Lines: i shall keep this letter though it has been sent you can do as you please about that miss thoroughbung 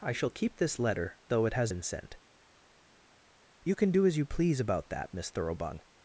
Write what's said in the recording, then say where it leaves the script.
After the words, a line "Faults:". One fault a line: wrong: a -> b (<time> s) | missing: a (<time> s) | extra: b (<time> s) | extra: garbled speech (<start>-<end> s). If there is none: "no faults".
i shall keep this letter though it has been sent you can do as you please about that miss thoroughbung
Faults:
no faults